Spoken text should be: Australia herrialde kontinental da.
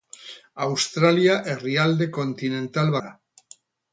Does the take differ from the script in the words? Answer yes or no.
no